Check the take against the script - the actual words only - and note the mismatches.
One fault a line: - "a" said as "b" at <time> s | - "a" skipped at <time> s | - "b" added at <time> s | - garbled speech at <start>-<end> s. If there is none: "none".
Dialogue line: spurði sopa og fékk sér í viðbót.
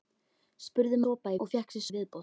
none